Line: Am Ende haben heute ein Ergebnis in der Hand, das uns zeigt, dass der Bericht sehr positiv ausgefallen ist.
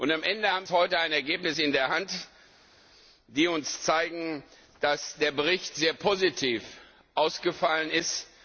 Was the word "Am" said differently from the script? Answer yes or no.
no